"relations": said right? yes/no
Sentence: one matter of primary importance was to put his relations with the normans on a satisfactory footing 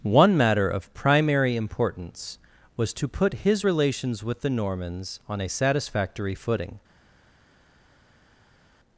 yes